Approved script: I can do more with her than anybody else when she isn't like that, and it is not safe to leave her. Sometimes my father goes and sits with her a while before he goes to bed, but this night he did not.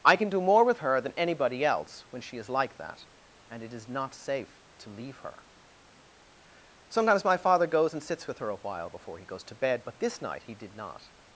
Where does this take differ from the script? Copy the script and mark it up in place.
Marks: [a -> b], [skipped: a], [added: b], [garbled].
I can do more with her than anybody else when she [isn't -> is] like that, and it is not safe to leave her. Sometimes my father goes and sits with her a while before he goes to bed, but this night he did not.